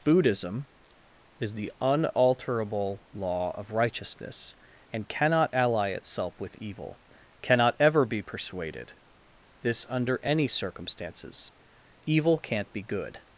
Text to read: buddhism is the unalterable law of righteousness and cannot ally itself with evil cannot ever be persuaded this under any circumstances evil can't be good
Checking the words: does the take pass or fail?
pass